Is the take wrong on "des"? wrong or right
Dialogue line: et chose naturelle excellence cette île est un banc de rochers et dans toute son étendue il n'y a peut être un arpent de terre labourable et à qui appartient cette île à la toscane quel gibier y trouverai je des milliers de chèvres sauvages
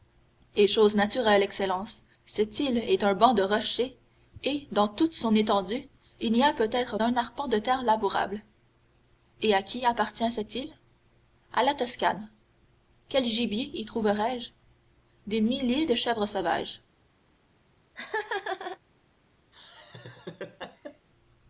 right